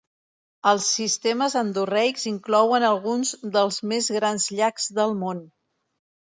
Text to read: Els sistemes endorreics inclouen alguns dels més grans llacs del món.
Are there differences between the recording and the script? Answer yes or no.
no